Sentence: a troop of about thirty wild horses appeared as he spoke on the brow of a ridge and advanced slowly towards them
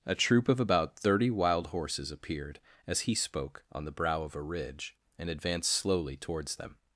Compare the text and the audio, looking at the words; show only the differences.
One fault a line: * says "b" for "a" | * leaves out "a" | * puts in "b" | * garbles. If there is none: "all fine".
all fine